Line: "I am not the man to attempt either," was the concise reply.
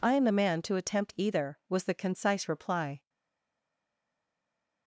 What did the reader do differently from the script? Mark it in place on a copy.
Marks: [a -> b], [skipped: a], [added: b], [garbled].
"I am [skipped: not] the man to attempt either," was the concise reply.